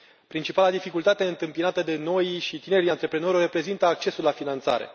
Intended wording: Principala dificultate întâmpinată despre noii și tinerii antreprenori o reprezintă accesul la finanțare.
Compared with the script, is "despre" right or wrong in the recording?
wrong